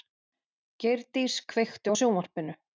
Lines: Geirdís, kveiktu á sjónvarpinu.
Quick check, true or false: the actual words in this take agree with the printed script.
true